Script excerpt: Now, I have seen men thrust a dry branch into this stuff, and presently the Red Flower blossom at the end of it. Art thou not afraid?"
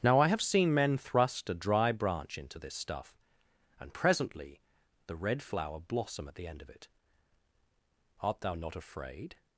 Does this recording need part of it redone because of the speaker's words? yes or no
no